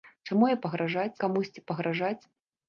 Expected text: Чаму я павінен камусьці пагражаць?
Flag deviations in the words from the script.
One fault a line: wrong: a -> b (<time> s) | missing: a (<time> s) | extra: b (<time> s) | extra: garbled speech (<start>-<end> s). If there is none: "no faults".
wrong: павінен -> пагражаць (0.7 s)